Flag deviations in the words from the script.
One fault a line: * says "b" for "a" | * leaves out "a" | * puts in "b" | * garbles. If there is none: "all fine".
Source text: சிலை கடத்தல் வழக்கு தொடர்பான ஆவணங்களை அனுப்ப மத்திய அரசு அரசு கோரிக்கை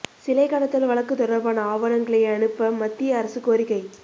* leaves out "அரசு"